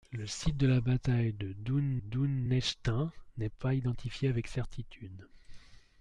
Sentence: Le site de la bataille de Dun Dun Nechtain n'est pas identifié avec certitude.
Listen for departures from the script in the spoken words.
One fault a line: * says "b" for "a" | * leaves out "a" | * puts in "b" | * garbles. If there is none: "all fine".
all fine